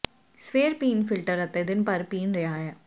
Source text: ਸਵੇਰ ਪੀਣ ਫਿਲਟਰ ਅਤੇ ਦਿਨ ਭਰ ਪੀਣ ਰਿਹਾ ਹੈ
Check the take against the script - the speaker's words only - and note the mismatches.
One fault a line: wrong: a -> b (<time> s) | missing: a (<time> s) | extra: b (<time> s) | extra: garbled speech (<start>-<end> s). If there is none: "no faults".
no faults